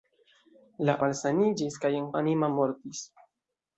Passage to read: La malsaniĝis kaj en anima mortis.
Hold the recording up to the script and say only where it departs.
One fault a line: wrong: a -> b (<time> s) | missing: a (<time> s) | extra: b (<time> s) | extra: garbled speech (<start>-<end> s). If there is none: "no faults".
no faults